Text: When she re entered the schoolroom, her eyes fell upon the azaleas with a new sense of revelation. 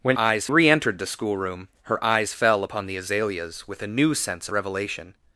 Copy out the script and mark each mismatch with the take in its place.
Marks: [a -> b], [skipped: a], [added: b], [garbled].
When [she -> eyes] re entered the schoolroom, her eyes fell upon the azaleas with a new sense [skipped: of] revelation.